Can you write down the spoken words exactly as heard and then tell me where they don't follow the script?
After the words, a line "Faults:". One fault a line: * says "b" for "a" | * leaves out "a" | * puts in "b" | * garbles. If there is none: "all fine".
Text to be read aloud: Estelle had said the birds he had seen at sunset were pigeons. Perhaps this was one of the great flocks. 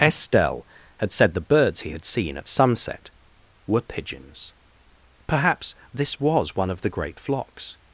Estelle had said the birds he had seen at sunset were pigeons. Perhaps this was one of the great flocks.
Faults:
all fine